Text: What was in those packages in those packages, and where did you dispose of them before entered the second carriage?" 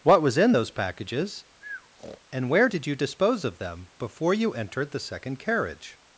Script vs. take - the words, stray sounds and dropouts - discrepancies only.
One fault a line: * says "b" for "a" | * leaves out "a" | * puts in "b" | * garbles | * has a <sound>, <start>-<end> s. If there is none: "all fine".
* leaves out "in those packages"
* has a breath, 1.6-2.2 s
* puts in "you"